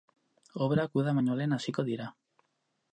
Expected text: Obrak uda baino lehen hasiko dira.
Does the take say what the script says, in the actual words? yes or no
yes